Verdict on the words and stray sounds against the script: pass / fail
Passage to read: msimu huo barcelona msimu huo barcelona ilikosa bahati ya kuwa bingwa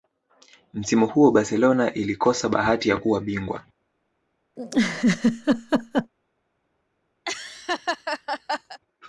fail